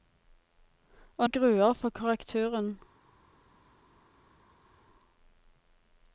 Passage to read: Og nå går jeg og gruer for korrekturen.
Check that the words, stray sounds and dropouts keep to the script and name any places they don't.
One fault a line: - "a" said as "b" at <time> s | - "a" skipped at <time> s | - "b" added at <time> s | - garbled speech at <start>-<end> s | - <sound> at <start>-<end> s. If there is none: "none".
- "nå går jeg" skipped at 1.3 s